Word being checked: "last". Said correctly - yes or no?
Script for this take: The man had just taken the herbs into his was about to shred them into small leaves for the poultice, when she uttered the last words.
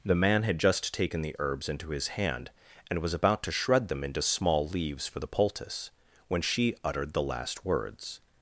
yes